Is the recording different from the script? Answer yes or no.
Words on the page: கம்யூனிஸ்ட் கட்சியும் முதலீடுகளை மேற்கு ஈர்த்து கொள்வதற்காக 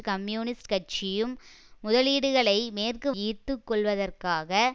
no